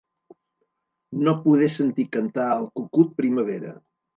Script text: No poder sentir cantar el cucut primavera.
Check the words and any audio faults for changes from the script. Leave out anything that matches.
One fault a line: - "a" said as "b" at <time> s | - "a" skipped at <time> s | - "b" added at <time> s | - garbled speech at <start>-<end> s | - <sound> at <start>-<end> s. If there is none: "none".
none